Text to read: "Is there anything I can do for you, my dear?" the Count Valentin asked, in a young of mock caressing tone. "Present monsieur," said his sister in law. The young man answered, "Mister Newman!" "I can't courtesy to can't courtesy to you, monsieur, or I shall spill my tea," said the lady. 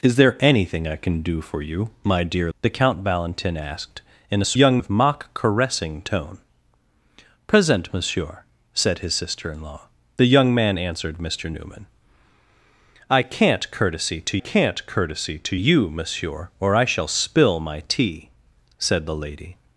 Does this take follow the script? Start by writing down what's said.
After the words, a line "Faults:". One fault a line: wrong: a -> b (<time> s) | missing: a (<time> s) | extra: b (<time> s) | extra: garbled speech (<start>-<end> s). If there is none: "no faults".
"Is there anything I can do for you, my dear?" the Count Valentin asked, in a young of mock caressing tone. "Present monsieur," said his sister in law. The young man answered, "Mister Newman!" "I can't courtesy to can't courtesy to you, monsieur, or I shall spill my tea," said the lady.
Faults:
no faults